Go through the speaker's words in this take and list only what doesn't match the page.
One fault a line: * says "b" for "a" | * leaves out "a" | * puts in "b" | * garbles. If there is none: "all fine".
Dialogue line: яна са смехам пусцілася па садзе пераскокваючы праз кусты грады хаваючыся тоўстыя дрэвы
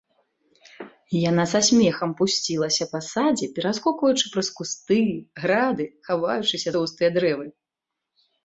all fine